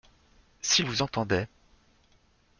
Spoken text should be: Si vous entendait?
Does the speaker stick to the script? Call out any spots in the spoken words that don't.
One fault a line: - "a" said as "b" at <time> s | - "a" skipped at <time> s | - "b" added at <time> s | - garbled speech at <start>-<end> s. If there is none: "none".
none